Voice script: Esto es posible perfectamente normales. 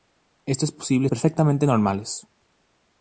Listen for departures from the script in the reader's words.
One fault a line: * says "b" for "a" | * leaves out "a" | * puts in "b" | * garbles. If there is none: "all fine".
all fine